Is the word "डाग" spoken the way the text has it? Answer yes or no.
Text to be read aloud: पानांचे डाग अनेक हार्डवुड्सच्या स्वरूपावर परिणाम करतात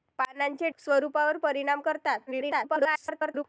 no